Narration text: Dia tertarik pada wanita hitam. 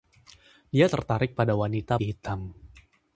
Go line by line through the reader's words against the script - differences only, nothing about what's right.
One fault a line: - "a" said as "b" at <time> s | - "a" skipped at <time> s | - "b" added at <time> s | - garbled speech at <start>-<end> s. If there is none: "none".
none